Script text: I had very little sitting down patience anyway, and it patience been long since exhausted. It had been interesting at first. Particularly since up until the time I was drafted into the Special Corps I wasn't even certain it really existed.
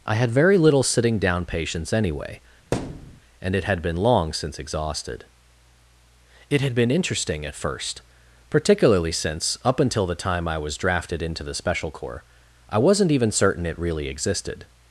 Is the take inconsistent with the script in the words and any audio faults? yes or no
yes